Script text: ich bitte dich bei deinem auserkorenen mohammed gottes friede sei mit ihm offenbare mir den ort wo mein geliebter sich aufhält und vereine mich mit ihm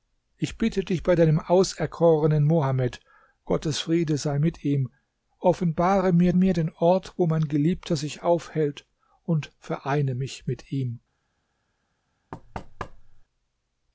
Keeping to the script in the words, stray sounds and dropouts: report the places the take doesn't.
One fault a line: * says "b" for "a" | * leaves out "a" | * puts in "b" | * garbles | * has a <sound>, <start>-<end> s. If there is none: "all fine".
* puts in "mir"
* has a thud, 12.3-13.2 s